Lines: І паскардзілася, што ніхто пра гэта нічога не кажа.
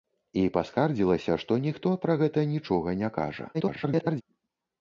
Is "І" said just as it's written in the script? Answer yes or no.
yes